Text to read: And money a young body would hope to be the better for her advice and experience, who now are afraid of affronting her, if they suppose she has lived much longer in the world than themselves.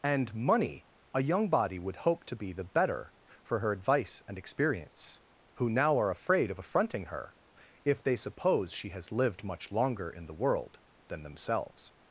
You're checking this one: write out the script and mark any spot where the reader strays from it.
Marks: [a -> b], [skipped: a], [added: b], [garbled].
And money a young body would hope to be the better for her advice and experience, who now are afraid of affronting her, if they suppose she has lived much longer in the world than themselves.